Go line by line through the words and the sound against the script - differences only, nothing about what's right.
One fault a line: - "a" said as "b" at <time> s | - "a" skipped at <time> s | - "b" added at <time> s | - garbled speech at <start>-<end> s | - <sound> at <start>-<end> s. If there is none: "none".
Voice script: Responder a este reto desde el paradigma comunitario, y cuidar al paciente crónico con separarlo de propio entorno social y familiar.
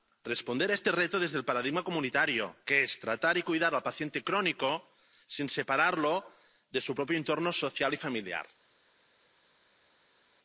- "que es tratar" added at 2.7 s
- "con" said as "sin" at 5.3 s
- "su" added at 6.8 s